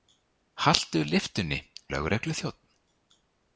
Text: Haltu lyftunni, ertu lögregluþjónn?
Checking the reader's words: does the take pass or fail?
fail